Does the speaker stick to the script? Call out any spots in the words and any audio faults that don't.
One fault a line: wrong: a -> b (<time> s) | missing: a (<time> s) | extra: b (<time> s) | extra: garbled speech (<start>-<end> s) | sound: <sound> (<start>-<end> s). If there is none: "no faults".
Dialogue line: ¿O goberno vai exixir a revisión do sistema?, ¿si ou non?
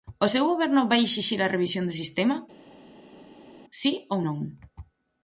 extra: seu (0.3 s)